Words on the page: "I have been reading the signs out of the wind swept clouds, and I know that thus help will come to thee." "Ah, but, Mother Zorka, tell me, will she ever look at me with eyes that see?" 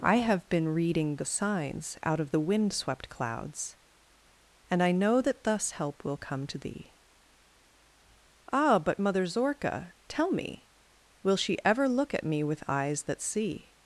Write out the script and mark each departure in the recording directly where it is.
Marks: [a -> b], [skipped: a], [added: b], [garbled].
"I have been reading the signs out of the wind swept clouds, and I know that thus help will come to thee." "Ah, but, Mother Zorka, tell me, will she ever look at me with eyes that see?"